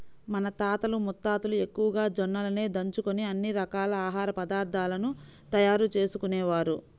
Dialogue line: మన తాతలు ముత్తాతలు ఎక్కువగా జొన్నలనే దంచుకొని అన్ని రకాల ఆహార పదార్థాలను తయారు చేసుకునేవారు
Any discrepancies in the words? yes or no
no